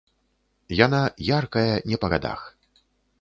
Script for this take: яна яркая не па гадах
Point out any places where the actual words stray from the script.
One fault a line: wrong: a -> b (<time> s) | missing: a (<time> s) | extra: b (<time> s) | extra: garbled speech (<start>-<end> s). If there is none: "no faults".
no faults